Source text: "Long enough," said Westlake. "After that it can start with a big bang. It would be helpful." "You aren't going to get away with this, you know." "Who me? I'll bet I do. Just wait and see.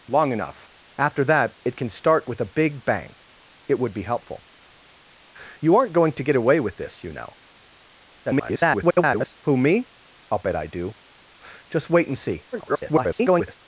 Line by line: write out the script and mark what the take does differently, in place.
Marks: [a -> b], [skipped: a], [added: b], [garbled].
"Long enough," [skipped: said Westlake.] "After that it can start with a big bang. It would be helpful." "You aren't going to get away with this, you know." [garbled] "Who me? I'll bet I do. Just wait and see. [garbled]